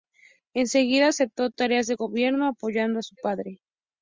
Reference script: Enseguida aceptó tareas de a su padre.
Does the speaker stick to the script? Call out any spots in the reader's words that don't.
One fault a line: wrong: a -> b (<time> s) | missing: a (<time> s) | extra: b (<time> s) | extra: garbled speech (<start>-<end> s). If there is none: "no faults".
extra: gobierno apoyando (1.9 s)